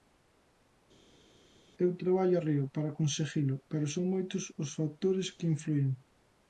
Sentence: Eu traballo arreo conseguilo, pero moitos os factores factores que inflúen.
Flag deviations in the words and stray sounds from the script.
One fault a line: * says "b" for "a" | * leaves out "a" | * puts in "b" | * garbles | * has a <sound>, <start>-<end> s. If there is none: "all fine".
* puts in "para"
* puts in "son"
* leaves out "factores"